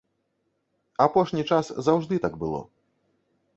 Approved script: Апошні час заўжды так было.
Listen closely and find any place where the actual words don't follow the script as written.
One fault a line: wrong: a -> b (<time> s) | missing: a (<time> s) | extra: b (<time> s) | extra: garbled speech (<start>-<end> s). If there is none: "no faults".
no faults